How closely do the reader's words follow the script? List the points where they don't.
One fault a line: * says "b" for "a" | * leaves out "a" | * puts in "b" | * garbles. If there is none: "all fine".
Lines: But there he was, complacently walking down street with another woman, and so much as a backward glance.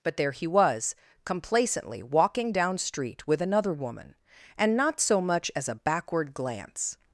* puts in "not"